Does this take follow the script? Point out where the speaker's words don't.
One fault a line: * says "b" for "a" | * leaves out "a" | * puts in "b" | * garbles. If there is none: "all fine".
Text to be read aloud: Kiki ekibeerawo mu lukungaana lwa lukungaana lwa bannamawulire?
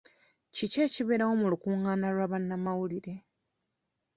* leaves out "lukungaana lwa"